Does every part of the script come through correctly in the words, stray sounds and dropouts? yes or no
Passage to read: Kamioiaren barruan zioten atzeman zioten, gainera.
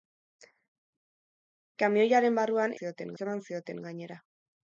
yes